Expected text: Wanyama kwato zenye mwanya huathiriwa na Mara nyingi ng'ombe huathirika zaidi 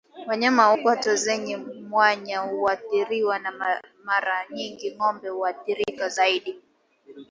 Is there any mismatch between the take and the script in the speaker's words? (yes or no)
no